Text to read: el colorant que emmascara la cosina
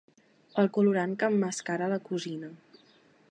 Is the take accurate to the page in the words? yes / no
yes